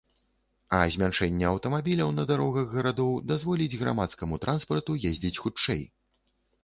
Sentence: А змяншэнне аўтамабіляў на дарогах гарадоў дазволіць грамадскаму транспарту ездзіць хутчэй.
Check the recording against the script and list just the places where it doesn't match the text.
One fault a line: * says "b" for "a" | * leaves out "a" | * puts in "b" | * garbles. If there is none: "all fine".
all fine